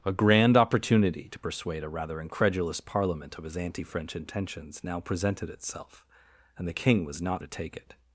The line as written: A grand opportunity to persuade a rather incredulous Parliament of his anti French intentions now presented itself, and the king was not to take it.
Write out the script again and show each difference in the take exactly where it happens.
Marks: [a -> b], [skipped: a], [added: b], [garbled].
A grand opportunity to persuade a rather incredulous Parliament of his anti French intentions now presented itself, and the king was not to take it.